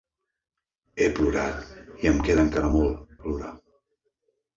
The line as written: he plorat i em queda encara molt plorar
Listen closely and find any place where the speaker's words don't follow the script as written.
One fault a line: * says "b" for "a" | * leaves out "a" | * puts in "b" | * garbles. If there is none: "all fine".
all fine